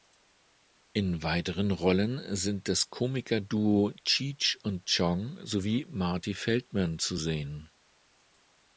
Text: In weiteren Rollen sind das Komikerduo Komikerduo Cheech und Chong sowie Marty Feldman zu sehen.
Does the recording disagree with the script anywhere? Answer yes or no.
yes